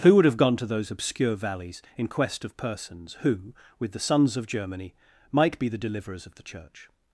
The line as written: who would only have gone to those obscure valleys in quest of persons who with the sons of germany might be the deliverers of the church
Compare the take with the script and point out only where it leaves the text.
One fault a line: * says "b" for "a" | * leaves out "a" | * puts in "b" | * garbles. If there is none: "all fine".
* leaves out "only"